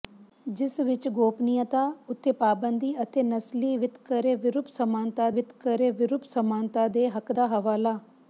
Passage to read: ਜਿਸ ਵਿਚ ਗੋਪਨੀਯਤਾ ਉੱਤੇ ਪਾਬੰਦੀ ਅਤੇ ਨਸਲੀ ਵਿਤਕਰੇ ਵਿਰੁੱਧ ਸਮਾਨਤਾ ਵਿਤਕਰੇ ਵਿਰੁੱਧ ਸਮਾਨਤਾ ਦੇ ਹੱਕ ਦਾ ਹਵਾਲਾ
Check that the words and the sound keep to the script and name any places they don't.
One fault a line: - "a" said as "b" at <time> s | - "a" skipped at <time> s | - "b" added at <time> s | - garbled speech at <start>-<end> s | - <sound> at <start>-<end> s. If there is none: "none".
none